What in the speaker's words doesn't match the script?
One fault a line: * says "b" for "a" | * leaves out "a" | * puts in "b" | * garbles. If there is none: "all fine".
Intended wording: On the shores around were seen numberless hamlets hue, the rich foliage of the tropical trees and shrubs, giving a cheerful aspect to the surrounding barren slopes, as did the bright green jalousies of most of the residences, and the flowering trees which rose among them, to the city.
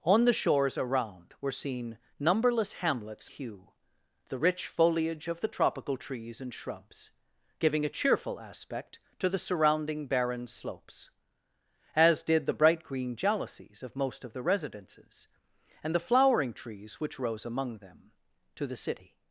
all fine